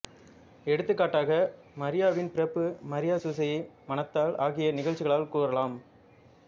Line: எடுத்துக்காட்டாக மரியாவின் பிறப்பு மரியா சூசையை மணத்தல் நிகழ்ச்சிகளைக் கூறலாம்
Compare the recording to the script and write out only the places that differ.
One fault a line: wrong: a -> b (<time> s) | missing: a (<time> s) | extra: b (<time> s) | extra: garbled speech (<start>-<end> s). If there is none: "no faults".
extra: ஆகிய (4.4 s)